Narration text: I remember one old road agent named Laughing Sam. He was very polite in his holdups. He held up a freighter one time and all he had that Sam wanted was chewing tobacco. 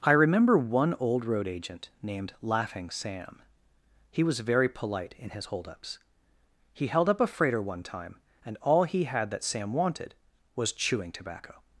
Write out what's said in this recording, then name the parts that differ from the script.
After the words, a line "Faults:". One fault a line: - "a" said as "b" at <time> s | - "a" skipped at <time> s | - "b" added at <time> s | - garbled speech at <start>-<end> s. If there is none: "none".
I remember one old road agent named Laughing Sam. He was very polite in his holdups. He held up a freighter one time and all he had that Sam wanted was chewing tobacco.
Faults:
none